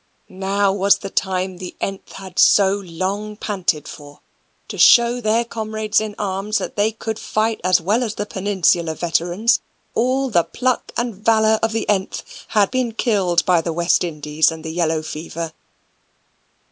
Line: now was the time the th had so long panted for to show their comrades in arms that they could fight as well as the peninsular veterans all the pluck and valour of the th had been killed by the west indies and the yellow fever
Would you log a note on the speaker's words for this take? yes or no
no